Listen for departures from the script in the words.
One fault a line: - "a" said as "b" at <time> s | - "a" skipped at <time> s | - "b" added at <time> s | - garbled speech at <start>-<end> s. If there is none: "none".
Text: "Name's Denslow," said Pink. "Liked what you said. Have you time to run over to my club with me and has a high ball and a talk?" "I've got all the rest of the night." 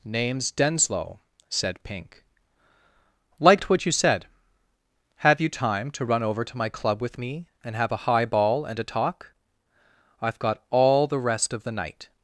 - "has" said as "have" at 7.8 s